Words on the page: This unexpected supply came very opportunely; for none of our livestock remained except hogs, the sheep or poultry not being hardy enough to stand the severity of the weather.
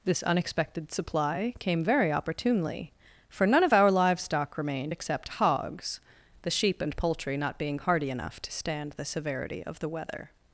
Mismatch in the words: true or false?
true